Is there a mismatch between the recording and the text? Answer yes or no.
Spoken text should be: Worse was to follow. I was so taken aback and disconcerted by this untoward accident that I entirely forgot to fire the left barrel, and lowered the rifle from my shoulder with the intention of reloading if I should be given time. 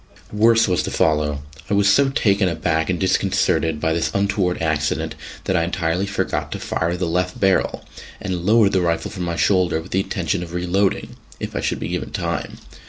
no